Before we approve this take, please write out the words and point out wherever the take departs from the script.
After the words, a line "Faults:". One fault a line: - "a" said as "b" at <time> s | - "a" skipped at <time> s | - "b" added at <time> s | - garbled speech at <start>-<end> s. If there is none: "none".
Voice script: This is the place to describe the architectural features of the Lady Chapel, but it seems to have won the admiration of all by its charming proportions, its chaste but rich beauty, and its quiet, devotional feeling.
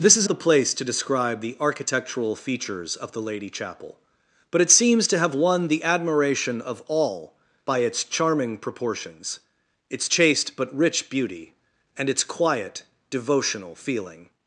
This is the place to describe the architectural features of the Lady Chapel, but it seems to have won the admiration of all by its charming proportions, its chaste but rich beauty, and its quiet, devotional feeling.
Faults:
none